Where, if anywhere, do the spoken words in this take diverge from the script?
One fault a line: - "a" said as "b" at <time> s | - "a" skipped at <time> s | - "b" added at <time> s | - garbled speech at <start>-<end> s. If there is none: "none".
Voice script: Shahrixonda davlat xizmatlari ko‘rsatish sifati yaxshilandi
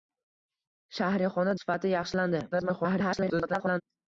- "davlat xizmatlari ko‘rsatish" skipped at 1.5 s
- garbled speech at 2.5-3.8 s